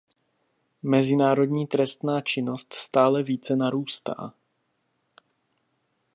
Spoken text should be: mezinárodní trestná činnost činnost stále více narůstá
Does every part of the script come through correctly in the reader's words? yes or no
no